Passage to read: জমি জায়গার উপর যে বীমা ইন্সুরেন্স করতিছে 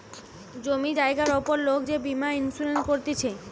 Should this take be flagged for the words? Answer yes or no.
yes